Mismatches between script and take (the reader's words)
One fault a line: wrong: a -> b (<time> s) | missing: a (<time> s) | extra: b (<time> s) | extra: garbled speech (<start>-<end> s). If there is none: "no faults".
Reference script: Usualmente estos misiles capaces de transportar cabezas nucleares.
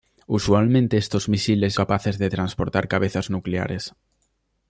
no faults